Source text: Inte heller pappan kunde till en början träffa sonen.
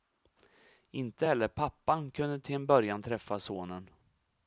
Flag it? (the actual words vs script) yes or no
no